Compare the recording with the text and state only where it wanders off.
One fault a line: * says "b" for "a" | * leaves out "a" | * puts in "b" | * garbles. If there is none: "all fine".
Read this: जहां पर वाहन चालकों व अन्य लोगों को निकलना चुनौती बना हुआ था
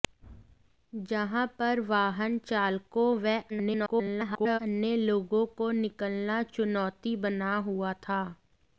* garbles